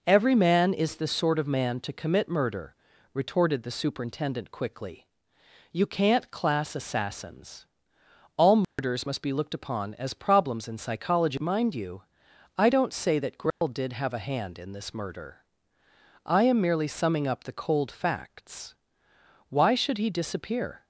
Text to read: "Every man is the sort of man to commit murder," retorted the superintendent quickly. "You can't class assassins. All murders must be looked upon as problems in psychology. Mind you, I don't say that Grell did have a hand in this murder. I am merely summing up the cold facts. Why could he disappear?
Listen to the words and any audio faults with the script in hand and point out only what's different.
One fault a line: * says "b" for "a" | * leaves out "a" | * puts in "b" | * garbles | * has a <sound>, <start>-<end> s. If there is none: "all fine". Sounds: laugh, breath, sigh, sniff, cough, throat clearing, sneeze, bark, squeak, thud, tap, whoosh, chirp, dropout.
* has a dropout, 8.6-8.8 s
* has a dropout, 13.5-13.6 s
* says "should" for "could"